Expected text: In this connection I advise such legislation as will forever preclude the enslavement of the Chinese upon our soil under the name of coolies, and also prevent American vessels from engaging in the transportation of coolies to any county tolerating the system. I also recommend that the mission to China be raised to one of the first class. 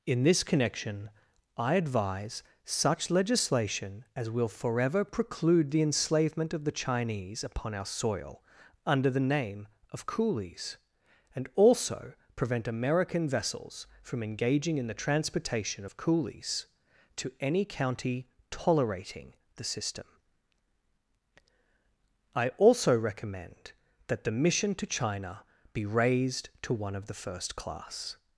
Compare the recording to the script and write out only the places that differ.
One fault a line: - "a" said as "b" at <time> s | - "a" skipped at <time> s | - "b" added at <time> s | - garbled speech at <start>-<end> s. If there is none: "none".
none